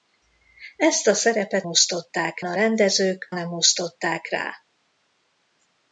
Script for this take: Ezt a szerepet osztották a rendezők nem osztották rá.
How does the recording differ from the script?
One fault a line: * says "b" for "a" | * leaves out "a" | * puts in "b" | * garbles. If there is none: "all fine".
all fine